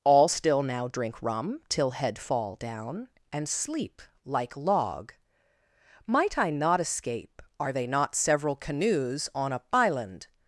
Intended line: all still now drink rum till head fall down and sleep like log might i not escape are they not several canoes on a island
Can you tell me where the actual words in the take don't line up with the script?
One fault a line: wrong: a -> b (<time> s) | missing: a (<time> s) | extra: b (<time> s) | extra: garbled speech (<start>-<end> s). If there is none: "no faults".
no faults